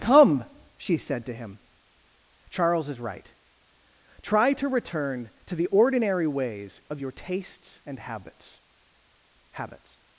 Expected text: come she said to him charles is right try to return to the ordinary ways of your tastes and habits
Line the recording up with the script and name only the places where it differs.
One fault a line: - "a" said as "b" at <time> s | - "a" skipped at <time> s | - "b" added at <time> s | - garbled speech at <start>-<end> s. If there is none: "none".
- "habits" added at 9.5 s